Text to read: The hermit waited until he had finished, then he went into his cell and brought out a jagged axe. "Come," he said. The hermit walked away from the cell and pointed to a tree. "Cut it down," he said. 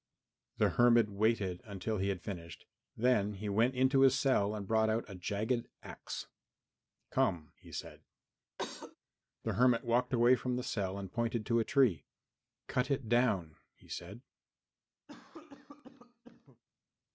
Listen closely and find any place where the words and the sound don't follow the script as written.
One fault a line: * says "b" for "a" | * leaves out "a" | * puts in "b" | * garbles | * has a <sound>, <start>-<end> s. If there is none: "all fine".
* has a cough, 8.6-9.0 s
* has a cough, 15.1-16.6 s